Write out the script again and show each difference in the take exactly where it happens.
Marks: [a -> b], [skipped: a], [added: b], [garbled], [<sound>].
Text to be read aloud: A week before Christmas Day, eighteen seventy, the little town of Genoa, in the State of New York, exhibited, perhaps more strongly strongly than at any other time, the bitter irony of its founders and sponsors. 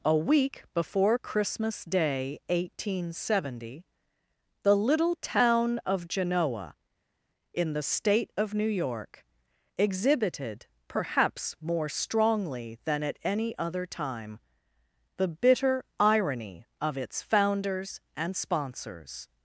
A week before Christmas Day, eighteen seventy, the little town of Genoa, in the State of New York, exhibited, perhaps more strongly [skipped: strongly] than at any other time, the bitter irony of its founders and sponsors.